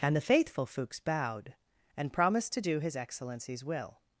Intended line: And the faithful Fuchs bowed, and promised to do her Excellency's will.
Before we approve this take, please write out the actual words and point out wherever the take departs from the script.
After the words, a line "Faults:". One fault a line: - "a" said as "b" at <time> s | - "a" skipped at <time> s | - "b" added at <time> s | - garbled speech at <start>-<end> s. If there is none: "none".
And the faithful Fuchs bowed, and promised to do his Excellency's will.
Faults:
- "her" said as "his" at 2.8 s